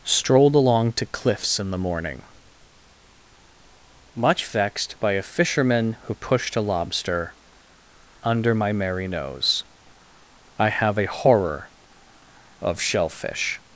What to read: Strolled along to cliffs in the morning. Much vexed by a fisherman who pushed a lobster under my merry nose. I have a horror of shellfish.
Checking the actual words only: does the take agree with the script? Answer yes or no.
yes